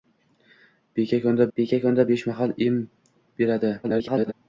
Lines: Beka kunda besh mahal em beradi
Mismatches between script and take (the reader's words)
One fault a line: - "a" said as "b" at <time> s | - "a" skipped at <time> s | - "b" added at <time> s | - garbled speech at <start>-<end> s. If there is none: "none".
- "beka kunda" added at 1.6 s
- garbled speech at 3.8-4.3 s